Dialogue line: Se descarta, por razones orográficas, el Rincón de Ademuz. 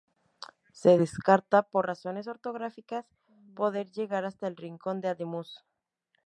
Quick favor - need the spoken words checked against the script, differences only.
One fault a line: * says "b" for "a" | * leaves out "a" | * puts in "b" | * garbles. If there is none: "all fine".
* puts in "poder llegar hasta"